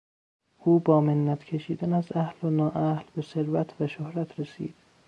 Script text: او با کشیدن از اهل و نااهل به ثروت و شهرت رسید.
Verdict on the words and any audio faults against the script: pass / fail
fail